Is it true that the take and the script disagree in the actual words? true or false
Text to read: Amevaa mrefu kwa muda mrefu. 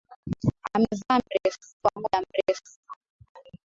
false